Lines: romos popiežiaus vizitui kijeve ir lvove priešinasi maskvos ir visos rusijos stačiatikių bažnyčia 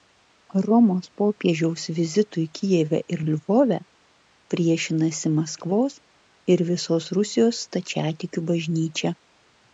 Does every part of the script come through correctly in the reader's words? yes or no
yes